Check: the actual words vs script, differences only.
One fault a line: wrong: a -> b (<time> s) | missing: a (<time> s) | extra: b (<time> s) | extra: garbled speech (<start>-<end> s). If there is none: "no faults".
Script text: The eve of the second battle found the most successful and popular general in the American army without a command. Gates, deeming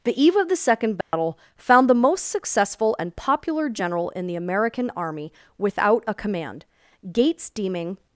no faults